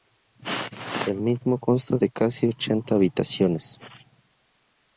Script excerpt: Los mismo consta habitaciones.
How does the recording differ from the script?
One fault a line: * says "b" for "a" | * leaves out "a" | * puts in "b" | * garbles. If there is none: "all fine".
* says "El" for "Los"
* puts in "de casi ochenta"